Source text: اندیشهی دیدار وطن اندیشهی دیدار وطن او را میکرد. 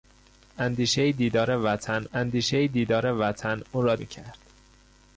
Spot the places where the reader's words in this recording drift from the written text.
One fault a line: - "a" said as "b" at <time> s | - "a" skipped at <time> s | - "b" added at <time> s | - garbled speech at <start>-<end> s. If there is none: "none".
none